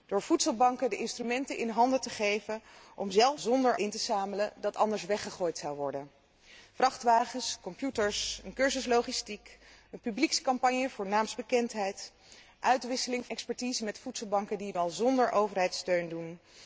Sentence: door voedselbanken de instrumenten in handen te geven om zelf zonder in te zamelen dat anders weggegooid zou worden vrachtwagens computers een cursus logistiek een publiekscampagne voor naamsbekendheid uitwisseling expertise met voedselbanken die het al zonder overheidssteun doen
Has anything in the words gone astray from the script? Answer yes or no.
no